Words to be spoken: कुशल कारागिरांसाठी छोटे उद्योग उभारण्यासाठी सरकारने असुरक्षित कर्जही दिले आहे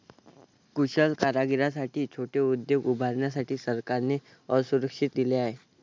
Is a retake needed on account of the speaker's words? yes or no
yes